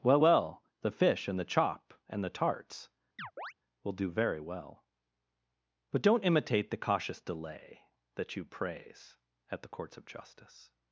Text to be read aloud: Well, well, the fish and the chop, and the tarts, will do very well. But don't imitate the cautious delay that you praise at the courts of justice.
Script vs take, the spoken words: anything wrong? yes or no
no